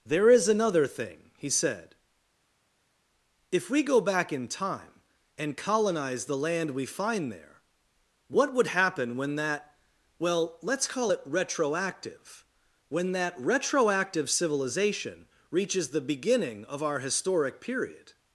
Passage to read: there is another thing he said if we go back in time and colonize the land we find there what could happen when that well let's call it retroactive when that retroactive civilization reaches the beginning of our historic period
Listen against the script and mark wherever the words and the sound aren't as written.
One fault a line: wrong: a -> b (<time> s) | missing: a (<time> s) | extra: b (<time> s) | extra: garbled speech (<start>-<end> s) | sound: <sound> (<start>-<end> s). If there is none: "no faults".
wrong: could -> would (8.5 s)